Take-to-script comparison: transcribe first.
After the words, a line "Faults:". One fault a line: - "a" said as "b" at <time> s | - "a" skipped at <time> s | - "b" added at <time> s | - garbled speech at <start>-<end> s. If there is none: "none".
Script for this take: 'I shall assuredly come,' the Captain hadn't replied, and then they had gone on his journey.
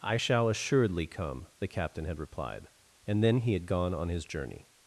'I shall assuredly come,' the Captain had replied, and then he had gone on his journey.
Faults:
- "hadn't" said as "had" at 2.1 s
- "they" said as "he" at 3.4 s